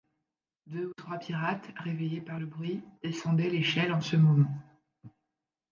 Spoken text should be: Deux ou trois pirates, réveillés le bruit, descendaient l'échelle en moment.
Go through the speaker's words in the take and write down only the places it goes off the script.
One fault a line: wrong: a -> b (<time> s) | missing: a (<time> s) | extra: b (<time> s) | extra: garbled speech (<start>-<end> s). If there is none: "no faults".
extra: par (2.2 s)
extra: ce (4.0 s)